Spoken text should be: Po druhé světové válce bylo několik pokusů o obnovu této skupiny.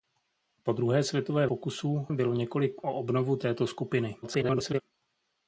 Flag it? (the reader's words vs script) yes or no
yes